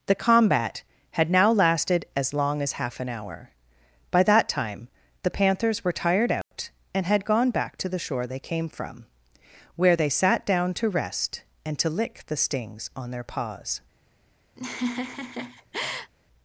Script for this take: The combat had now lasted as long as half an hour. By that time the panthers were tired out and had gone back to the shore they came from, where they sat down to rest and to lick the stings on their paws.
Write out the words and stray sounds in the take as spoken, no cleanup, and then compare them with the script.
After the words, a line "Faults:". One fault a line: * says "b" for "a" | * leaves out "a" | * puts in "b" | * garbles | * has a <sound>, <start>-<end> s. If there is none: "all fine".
The combat had now lasted as long as half an hour. By that time the panthers were tired out and had gone back to the shore they came from, where they sat down to rest and to lick the stings on their paws.
Faults:
* has a dropout, 6.4-6.5 s
* has a laugh, 14.6-16.1 s